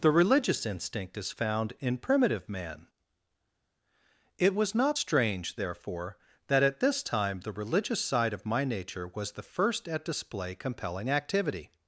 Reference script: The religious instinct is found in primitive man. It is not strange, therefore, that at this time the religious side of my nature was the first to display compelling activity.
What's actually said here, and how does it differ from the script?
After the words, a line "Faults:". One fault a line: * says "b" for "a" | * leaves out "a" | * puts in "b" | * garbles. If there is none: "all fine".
The religious instinct is found in primitive man. It was not strange, therefore, that at this time the religious side of my nature was the first at display compelling activity.
Faults:
* says "was" for "is"
* says "at" for "to"